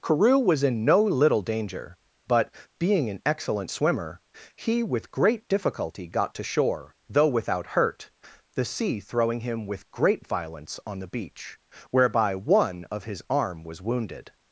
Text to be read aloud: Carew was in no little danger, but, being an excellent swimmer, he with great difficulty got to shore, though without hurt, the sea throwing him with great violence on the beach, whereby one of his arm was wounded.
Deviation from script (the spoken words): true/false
false